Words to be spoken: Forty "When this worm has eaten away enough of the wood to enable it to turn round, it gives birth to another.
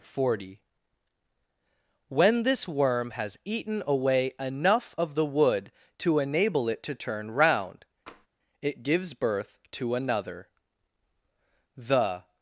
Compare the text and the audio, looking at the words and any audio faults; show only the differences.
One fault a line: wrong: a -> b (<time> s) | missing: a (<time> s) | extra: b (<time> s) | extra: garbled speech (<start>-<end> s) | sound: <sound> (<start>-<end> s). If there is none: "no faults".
sound: tap (8.1-8.3 s)
extra: The (11.8 s)